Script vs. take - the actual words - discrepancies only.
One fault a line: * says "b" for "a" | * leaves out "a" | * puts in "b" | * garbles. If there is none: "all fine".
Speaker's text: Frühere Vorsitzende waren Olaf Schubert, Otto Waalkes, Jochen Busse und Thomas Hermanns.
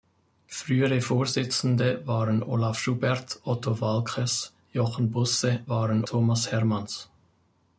* says "waren" for "und"